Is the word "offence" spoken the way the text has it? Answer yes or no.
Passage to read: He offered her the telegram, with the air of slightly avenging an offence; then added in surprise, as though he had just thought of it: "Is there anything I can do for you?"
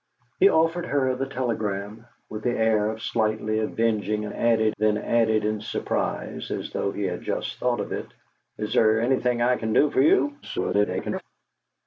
no